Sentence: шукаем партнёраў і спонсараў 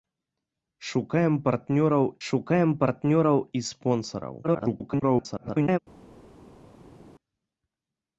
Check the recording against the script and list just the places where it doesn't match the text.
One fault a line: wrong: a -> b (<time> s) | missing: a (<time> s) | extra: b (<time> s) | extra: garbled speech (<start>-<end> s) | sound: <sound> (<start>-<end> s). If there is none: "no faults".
extra: шукаем партнёраў (2.3 s)
extra: garbled speech (4.4-5.8 s)